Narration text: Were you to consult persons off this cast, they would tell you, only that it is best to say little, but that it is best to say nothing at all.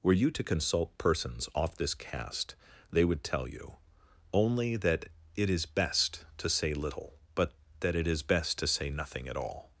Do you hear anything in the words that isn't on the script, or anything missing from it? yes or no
no